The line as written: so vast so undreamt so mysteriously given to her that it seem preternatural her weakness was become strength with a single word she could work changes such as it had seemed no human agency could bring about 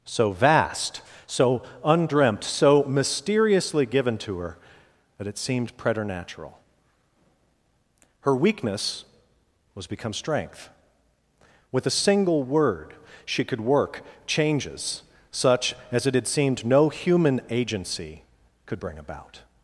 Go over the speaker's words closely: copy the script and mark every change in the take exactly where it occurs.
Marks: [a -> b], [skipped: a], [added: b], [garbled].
so vast so undreamt so mysteriously given to her that it [seem -> seemed] preternatural her weakness was become strength with a single word she could work changes such as it had seemed no human agency could bring about